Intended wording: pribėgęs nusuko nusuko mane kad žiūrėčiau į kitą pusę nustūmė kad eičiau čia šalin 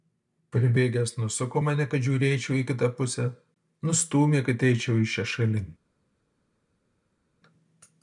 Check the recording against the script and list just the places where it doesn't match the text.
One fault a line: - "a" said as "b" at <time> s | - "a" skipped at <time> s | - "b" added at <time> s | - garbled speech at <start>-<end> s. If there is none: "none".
- "nusuko" skipped at 1.6 s
- "iš" added at 5.1 s